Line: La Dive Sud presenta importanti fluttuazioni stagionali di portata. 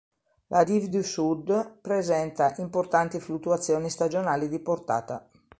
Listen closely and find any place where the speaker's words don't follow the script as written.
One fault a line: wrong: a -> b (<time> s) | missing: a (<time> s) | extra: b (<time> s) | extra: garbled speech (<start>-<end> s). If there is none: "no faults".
extra: du (0.9 s)